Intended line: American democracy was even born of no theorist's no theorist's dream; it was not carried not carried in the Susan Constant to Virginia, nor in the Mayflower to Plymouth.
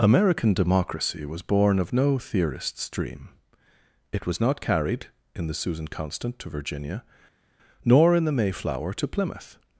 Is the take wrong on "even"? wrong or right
wrong